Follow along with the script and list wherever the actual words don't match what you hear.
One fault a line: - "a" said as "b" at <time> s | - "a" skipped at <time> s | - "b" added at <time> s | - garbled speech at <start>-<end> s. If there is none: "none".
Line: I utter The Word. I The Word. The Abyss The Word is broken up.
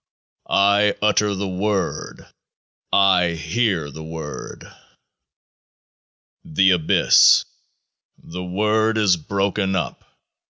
- "hear" added at 3.3 s